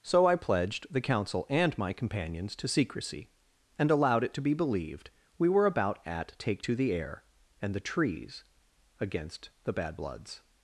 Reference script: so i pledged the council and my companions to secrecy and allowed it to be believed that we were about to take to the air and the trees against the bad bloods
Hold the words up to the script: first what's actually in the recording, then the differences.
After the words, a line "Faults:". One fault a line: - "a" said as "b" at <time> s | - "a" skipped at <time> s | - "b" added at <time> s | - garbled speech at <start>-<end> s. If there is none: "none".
so i pledged the council and my companions to secrecy and allowed it to be believed we were about at take to the air and the trees against the bad bloods
Faults:
- "that" skipped at 5.1 s
- "to" said as "at" at 6.0 s